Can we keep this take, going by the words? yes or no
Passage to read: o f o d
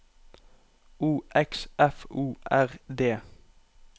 no